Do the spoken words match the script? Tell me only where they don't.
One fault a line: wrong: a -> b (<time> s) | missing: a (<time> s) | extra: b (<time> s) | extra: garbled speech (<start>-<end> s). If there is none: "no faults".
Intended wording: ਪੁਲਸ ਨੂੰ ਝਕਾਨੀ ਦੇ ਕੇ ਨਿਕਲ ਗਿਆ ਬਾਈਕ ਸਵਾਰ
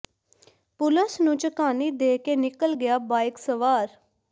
no faults